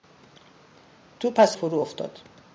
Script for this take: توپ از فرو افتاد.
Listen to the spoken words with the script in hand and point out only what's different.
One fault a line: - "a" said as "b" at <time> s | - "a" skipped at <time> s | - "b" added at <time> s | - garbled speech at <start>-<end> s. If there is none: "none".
none